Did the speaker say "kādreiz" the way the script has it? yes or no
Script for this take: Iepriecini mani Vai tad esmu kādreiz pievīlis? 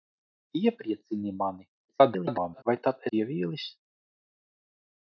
no